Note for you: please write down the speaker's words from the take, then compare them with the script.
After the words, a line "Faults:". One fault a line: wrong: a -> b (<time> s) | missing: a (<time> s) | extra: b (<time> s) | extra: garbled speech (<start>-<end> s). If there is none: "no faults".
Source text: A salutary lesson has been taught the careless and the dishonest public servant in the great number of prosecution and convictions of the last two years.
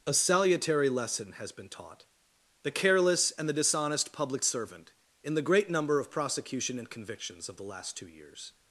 A salutary lesson has been taught the careless and the dishonest public servant in the great number of prosecution and convictions of the last two years.
Faults:
no faults